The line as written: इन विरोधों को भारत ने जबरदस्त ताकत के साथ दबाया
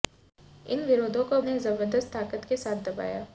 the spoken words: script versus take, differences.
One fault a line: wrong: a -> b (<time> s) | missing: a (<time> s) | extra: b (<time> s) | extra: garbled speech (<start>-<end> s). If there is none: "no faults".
missing: भारत (1.4 s)